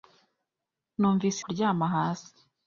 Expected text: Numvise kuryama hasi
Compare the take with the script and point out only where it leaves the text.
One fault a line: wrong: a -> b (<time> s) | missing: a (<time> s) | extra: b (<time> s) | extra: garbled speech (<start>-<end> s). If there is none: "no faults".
no faults